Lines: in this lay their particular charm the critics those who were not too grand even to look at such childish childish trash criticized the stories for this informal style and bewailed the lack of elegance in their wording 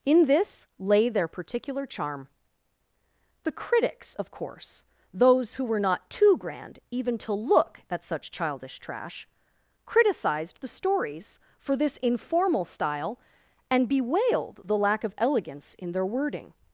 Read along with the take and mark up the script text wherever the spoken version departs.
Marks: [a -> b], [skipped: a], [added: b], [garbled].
in this lay their particular charm the critics [added: of course] those who were not too grand even to look at such childish [skipped: childish] trash criticized the stories for this informal style and bewailed the lack of elegance in their wording